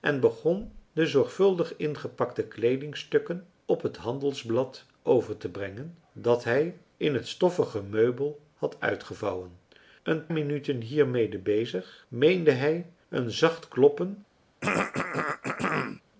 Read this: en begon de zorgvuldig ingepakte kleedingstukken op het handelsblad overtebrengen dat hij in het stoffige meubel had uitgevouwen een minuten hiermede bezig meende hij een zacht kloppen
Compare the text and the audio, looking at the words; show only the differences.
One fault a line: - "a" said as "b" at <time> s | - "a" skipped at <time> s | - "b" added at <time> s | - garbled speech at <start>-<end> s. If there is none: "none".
none